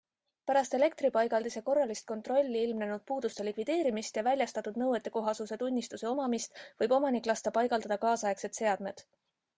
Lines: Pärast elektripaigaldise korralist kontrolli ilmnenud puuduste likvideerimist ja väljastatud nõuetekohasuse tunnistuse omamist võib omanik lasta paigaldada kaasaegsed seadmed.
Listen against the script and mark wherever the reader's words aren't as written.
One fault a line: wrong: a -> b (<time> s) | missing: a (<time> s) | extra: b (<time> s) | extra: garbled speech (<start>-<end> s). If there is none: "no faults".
no faults